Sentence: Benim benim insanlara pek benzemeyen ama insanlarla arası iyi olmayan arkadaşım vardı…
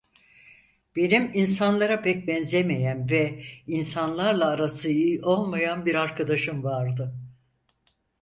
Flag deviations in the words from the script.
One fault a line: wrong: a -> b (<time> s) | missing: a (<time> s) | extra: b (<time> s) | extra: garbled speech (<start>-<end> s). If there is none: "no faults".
missing: benim (1.3 s)
wrong: ama -> ve (3.1 s)
extra: bir (5.8 s)